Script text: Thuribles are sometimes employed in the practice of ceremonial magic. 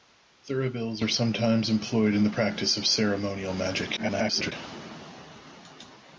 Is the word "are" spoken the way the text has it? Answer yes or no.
yes